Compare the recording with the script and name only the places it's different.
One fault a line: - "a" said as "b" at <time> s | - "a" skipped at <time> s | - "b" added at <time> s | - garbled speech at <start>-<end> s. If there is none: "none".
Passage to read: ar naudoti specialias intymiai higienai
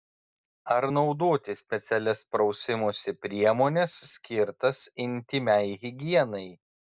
- "prausimosi priemones skirtas" added at 2.3 s